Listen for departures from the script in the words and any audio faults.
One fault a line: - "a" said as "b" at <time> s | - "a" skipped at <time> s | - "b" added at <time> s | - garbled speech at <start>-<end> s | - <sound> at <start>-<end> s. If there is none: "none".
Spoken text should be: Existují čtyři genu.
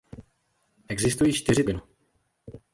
none